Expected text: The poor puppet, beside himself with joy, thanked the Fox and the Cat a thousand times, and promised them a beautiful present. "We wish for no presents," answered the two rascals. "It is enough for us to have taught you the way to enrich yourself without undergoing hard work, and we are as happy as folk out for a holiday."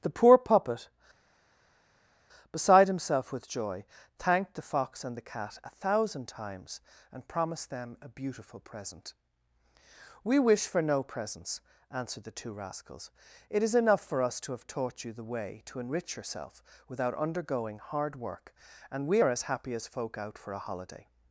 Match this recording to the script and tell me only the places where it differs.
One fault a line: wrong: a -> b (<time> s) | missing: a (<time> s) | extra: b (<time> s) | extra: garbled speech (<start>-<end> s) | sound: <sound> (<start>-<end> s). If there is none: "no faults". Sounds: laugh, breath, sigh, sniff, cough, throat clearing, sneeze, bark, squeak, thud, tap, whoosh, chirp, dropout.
no faults